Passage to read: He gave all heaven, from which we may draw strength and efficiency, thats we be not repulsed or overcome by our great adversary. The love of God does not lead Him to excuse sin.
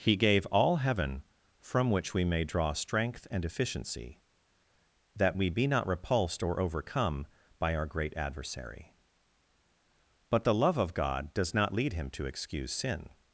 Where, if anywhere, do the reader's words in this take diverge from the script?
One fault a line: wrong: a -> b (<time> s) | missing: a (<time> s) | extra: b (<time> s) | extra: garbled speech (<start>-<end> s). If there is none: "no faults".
wrong: thats -> that (5.2 s)
extra: But (10.3 s)